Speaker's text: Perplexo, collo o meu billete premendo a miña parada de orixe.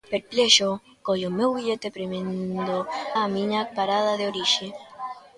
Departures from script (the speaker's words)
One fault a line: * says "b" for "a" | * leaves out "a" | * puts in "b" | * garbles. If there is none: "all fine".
all fine